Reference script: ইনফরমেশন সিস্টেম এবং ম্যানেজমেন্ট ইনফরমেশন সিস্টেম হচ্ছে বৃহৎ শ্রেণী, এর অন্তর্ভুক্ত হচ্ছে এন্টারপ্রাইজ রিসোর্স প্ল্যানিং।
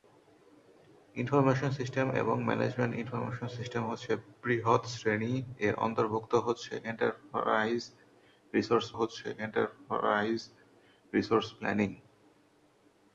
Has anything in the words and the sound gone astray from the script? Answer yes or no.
yes